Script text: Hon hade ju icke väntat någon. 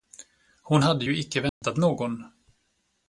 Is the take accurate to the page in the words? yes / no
yes